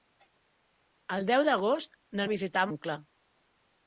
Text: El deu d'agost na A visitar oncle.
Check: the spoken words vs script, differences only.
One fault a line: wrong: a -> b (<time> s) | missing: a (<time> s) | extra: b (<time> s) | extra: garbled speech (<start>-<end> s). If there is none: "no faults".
no faults